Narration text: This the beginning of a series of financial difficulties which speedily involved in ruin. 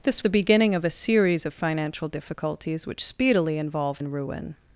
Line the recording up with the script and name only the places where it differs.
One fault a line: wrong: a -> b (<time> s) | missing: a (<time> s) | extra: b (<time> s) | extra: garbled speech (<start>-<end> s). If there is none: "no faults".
no faults